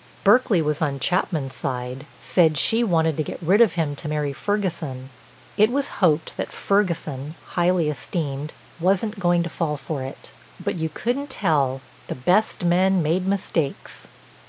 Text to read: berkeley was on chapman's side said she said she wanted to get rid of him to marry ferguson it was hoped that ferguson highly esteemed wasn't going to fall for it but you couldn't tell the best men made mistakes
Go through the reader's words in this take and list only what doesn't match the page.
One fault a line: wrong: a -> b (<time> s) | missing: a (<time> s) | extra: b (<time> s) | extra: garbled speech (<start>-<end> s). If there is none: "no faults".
missing: said she (2.8 s)